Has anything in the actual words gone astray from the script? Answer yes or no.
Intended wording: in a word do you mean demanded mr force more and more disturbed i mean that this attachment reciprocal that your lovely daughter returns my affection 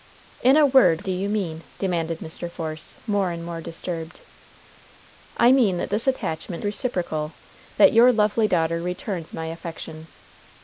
no